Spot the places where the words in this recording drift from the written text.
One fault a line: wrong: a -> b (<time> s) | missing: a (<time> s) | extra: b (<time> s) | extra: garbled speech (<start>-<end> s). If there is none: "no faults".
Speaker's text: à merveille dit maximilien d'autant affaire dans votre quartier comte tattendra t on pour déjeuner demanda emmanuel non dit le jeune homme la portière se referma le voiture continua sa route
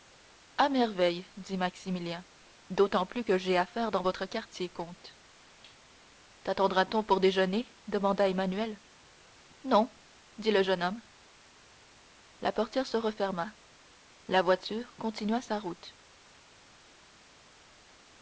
extra: plus que j'ai (3.0 s)
wrong: le -> la (14.3 s)